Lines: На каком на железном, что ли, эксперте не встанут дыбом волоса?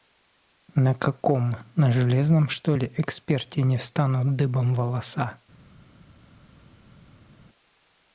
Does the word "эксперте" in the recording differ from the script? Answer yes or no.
no